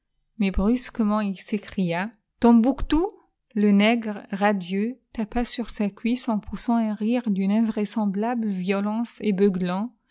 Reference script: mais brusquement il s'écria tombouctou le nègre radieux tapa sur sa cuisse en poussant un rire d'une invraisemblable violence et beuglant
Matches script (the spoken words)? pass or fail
pass